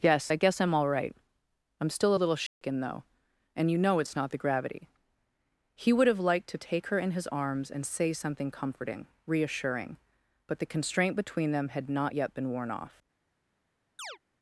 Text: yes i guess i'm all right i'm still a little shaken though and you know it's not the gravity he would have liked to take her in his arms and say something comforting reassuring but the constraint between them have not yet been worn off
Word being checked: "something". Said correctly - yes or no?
yes